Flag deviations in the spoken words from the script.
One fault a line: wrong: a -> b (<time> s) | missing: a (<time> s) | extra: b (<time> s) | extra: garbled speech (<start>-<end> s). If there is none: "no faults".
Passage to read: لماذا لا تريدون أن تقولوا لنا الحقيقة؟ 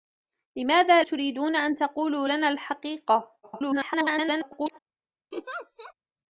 missing: لا (1.0 s)
extra: garbled speech (3.4-4.8 s)